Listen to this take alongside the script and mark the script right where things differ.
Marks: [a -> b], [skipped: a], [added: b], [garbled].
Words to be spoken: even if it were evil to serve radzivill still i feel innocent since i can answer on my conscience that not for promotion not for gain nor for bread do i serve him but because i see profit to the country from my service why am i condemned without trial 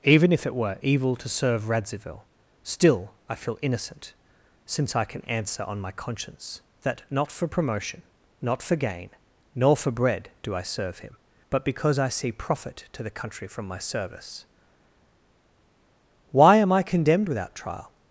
even if it were evil to serve radzivill still i feel innocent since i can answer on my conscience that not for promotion not for gain nor for bread do i serve him but because i see profit to the country from my service why am i condemned without trial